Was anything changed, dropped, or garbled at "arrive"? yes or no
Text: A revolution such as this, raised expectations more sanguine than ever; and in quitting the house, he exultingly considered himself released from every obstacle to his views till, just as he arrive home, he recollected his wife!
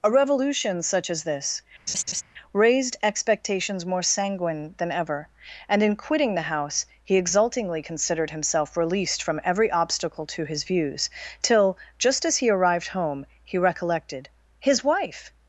yes